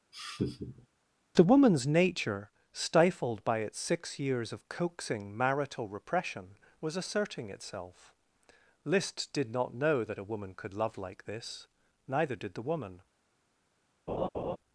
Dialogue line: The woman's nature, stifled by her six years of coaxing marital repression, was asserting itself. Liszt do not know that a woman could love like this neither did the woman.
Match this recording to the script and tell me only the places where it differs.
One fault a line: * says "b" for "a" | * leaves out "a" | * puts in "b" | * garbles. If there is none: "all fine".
* says "its" for "her"
* says "did" for "do"